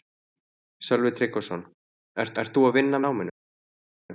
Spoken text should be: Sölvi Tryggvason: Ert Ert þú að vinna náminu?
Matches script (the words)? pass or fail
pass